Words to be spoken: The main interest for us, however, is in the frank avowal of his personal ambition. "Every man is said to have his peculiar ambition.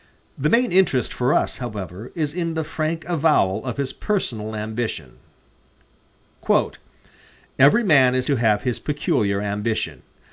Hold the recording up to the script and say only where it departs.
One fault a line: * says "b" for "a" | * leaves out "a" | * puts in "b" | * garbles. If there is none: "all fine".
* leaves out "said"